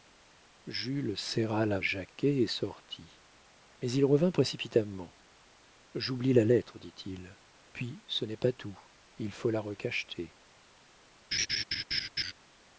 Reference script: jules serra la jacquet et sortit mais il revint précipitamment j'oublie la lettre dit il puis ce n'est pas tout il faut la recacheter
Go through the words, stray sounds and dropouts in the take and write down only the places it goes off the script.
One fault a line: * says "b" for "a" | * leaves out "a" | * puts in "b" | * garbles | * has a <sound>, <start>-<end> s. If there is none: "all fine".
* has a laugh, 11.3-12.3 s